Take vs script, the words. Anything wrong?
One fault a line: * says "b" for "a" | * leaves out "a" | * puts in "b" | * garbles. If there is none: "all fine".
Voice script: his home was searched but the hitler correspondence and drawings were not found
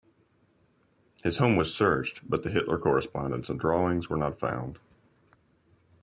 all fine